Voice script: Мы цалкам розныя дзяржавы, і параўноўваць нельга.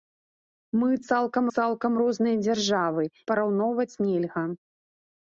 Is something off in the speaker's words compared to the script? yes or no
yes